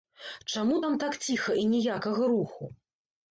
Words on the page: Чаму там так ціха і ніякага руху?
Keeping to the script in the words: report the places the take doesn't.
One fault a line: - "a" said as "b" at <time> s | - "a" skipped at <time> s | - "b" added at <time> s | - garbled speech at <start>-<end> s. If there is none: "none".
none